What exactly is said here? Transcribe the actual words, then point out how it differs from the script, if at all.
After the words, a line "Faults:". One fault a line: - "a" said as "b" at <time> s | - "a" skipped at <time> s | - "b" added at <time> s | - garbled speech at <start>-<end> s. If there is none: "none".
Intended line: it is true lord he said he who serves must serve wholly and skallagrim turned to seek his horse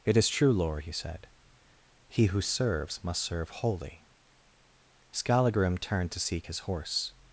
it is true lord he said he who serves must serve wholly skallagrim turned to seek his horse
Faults:
- "and" skipped at 4.0 s